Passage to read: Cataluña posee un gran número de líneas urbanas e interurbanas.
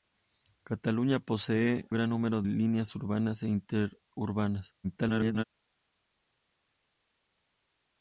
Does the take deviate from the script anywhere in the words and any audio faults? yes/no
yes